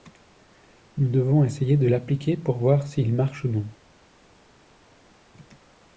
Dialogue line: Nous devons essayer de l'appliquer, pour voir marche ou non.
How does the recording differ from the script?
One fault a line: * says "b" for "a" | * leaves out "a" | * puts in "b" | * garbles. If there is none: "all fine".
* puts in "s'il"